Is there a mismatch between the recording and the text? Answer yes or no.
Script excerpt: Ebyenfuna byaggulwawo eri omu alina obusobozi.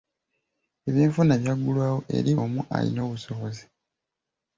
no